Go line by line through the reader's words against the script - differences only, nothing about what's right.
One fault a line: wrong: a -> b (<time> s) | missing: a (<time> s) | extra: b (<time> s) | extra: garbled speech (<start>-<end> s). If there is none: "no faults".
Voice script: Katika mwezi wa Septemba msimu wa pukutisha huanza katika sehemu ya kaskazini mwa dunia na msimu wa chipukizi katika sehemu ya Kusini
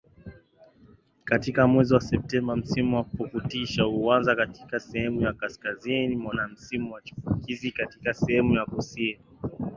missing: dunia (6.3 s)